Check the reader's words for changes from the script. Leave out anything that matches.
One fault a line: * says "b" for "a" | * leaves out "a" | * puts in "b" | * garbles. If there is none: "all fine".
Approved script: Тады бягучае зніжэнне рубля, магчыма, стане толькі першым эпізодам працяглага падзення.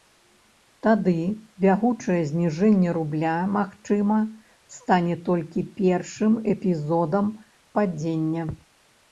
* leaves out "працяглага"